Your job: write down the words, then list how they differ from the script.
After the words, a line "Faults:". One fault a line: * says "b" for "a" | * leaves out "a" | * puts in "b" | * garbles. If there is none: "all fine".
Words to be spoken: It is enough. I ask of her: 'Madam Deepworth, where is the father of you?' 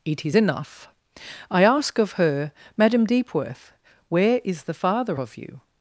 It is enough. I ask of her: 'Madam Deepworth, where is the father of you?'
Faults:
all fine